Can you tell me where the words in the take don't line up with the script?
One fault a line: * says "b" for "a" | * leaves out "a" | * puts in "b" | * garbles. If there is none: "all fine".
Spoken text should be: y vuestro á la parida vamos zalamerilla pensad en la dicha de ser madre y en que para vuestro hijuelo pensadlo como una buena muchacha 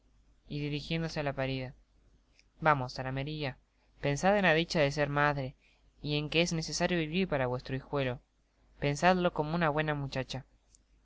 * says "dirijiéndose" for "vuestro"
* puts in "es necesario vivir"